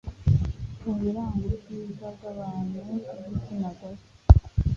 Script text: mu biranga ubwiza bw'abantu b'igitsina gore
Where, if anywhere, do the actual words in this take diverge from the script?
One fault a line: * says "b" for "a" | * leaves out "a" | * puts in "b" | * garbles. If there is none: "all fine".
all fine